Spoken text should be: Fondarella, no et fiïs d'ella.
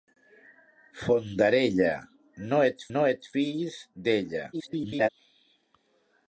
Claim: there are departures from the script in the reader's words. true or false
true